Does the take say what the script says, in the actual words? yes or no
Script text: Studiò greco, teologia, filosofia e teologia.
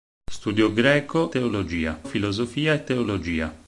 yes